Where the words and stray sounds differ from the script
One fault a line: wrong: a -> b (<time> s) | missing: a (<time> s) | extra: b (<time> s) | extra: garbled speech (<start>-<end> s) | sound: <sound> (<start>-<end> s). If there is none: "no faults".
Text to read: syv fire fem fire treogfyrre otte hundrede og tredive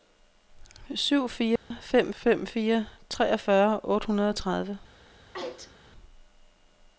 sound: dropout (1.6-1.7 s)
extra: fem (2.1 s)
sound: sneeze (5.3-5.7 s)